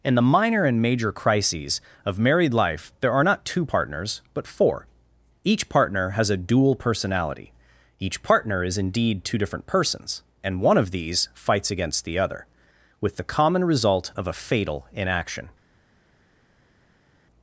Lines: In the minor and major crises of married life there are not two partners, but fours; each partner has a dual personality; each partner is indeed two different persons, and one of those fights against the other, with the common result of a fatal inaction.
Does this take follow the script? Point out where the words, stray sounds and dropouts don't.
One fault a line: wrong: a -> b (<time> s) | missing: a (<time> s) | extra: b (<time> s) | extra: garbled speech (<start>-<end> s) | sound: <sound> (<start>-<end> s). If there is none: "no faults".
wrong: fours -> four (4.5 s)
wrong: those -> these (10.9 s)